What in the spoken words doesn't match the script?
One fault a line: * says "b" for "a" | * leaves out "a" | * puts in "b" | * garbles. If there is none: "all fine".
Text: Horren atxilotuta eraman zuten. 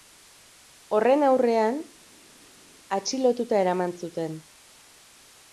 * puts in "aurrean"